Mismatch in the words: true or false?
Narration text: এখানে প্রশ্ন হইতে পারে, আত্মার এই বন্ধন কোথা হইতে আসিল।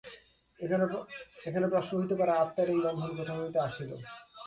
false